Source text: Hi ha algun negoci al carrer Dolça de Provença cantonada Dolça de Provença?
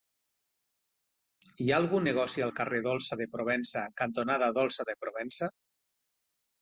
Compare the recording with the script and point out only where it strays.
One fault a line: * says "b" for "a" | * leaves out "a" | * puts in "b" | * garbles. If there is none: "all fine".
all fine